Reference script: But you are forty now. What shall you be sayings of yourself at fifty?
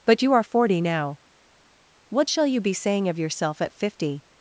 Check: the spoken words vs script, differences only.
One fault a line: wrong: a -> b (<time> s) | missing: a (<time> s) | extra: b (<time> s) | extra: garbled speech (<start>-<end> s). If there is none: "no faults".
wrong: sayings -> saying (2.7 s)